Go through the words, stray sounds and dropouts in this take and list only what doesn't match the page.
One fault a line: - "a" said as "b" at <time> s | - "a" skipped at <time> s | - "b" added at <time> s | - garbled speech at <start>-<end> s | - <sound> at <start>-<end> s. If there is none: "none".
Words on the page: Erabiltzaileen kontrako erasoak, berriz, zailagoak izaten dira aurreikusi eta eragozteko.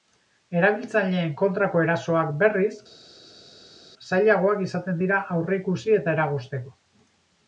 none